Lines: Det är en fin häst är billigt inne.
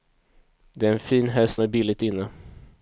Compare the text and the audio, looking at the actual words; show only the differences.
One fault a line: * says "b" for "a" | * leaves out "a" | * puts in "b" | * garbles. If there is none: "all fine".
all fine